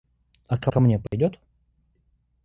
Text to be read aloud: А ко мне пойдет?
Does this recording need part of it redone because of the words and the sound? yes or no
yes